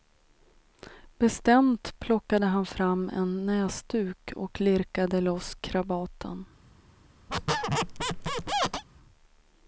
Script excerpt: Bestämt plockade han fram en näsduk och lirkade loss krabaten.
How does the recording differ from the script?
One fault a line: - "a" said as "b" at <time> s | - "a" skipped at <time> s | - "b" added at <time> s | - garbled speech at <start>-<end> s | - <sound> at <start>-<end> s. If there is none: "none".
- squeak at 7.3-8.8 s